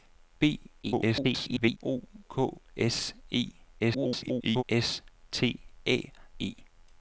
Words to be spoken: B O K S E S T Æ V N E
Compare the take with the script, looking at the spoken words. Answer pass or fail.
fail